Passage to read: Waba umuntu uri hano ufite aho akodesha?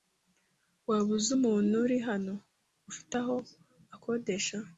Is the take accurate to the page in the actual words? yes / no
no